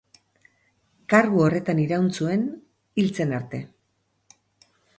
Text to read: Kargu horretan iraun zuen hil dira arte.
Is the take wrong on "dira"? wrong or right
wrong